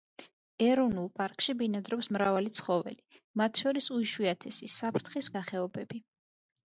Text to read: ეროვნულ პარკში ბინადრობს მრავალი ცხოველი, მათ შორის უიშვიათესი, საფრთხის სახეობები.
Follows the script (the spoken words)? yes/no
yes